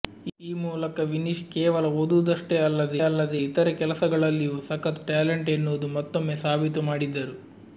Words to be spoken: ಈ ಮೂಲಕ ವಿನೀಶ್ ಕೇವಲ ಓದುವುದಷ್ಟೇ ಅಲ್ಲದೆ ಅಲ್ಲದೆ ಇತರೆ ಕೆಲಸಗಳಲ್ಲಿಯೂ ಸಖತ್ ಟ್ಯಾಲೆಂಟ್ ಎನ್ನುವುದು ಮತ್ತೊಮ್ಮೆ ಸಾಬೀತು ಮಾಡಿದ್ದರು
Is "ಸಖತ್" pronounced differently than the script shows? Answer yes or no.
no